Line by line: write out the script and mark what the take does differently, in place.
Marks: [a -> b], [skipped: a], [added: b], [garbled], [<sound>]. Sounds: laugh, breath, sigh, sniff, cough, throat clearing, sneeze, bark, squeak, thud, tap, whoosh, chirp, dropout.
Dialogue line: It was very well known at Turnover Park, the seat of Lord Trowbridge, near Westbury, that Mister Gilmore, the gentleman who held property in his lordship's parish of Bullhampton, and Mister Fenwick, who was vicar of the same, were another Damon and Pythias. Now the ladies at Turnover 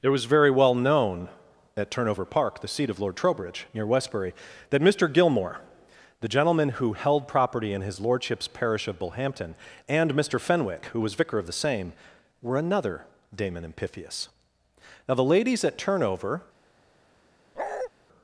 It was very well known at Turnover Park, the seat of Lord Trowbridge, near Westbury, that Mister Gilmore, the gentleman who held property in his lordship's parish of Bullhampton, and Mister Fenwick, who was vicar of the same, were another Damon and Pythias. Now the ladies at Turnover [bark]